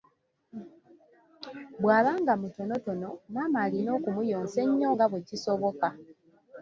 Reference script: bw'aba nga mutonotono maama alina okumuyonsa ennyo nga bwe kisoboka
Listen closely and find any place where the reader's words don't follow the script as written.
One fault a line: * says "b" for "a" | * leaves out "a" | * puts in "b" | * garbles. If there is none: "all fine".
all fine